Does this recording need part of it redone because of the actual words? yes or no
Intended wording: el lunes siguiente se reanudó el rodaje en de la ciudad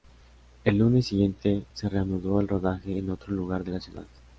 yes